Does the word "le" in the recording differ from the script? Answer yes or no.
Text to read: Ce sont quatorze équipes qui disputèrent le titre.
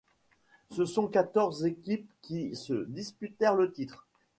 no